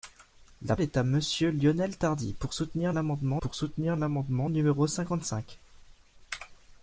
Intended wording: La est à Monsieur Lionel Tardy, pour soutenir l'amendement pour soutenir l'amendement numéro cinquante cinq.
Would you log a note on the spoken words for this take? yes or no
no